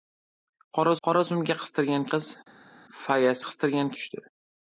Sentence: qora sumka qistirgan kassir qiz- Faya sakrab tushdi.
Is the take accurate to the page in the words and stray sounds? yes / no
no